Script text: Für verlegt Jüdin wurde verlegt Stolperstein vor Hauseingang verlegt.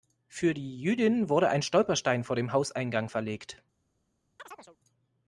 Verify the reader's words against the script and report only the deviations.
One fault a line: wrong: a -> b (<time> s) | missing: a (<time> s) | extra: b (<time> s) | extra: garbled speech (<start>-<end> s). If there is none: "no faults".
wrong: verlegt -> die (0.6 s)
wrong: verlegt -> ein (1.5 s)
extra: dem (2.4 s)